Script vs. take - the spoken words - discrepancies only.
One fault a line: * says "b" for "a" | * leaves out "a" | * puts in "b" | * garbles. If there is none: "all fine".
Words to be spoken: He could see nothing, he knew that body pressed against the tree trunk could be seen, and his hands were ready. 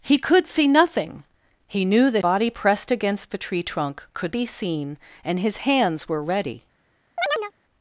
all fine